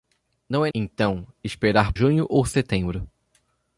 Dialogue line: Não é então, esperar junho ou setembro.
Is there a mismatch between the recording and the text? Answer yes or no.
no